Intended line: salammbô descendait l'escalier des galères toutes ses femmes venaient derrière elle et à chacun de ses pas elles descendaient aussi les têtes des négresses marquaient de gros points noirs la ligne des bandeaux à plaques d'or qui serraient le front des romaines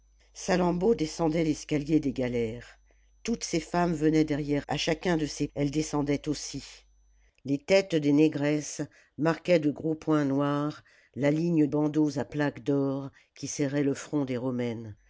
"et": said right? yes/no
no